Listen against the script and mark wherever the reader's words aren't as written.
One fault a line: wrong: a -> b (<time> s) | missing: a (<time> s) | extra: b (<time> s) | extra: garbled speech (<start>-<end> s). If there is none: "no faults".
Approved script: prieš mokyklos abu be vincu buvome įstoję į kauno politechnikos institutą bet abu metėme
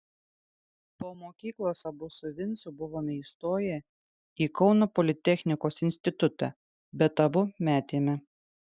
wrong: prieš -> po (1.0 s)
wrong: be -> su (2.2 s)